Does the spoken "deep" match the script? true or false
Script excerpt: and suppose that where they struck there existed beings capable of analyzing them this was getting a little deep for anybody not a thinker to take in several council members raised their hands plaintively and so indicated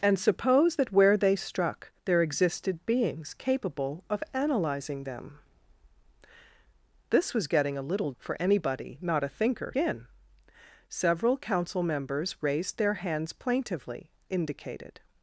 false